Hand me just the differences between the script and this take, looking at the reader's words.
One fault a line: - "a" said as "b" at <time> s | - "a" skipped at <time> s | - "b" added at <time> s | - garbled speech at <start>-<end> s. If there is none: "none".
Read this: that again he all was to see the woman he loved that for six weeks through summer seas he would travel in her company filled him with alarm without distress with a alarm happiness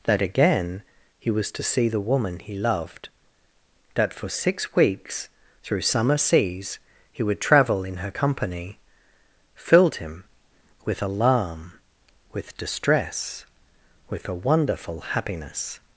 - "all" skipped at 1.3 s
- "without" said as "with" at 12.3 s
- "alarm" said as "wonderful" at 14.3 s